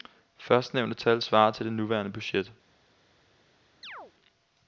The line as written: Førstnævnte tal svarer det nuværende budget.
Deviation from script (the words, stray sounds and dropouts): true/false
true